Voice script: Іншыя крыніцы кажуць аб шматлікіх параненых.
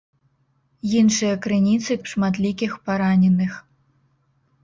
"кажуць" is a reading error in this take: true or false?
true